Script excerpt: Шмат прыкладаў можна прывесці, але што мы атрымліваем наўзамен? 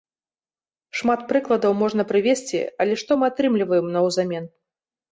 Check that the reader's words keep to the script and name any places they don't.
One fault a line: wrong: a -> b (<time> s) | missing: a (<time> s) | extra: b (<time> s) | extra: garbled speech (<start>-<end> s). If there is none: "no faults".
no faults